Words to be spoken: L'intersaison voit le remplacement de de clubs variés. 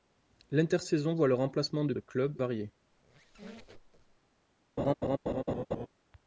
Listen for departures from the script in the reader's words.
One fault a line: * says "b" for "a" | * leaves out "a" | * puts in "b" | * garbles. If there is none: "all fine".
all fine